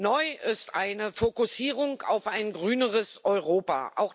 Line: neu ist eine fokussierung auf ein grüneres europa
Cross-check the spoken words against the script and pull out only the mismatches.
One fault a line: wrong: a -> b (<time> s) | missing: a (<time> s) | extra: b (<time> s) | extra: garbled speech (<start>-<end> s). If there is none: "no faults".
no faults